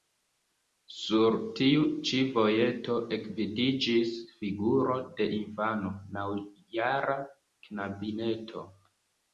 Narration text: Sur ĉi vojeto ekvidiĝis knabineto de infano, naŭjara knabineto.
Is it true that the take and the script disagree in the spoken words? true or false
true